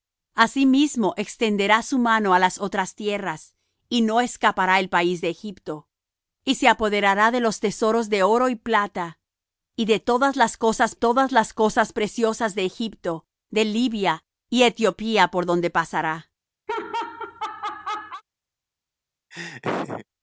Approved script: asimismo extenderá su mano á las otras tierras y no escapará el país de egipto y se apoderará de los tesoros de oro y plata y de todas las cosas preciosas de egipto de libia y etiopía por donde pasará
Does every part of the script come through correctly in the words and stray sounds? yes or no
no